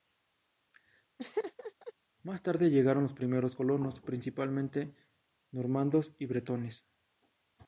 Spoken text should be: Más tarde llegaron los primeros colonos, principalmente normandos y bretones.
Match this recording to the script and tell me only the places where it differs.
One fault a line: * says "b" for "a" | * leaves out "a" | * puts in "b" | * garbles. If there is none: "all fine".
all fine